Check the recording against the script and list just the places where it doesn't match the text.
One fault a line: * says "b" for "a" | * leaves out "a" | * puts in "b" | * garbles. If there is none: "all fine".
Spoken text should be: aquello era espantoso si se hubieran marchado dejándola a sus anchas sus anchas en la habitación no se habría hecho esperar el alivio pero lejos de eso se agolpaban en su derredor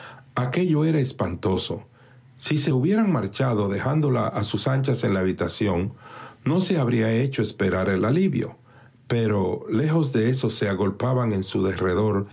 * leaves out "sus anchas"